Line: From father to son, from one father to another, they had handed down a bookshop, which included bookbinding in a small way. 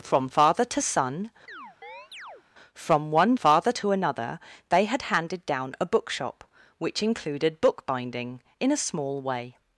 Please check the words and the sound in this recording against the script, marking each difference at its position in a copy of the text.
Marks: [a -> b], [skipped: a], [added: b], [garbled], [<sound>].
From father to son, [chirp] from one father to another, they had handed down a bookshop, which included bookbinding in a small way.